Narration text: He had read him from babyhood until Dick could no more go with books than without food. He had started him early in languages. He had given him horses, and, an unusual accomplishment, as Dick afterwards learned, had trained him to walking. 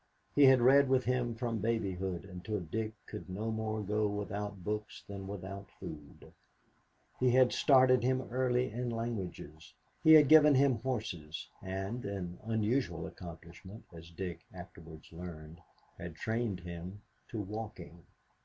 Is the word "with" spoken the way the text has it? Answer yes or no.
no